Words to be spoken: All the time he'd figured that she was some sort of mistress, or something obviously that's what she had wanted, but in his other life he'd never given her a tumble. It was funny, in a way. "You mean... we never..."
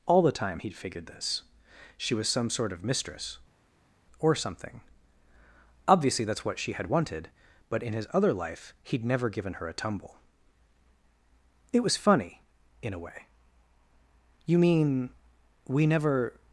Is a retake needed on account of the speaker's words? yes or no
yes